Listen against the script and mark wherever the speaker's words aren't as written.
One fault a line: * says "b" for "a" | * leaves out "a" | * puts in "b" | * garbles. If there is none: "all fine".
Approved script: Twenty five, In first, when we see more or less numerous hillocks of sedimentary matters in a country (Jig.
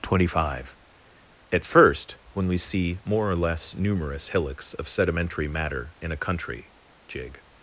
* says "At" for "In"
* says "matter" for "matters"